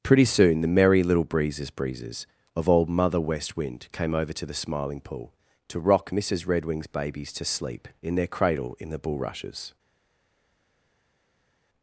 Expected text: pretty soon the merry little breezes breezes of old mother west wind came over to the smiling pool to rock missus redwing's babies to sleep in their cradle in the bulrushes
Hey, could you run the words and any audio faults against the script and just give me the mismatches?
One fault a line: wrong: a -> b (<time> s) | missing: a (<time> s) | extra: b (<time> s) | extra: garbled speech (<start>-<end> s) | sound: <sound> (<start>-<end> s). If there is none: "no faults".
no faults